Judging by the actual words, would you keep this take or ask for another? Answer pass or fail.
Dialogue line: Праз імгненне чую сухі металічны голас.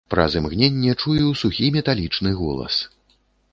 pass